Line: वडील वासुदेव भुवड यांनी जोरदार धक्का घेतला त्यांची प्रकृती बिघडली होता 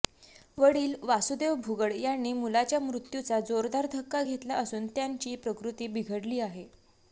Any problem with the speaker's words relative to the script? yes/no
yes